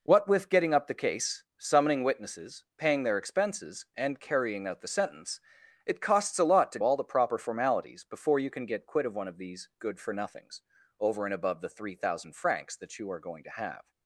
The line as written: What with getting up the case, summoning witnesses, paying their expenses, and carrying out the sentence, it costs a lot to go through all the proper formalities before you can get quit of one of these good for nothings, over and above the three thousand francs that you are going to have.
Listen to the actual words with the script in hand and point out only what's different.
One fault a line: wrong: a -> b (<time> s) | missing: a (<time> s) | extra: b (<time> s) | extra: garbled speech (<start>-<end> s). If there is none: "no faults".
missing: go through (6.8 s)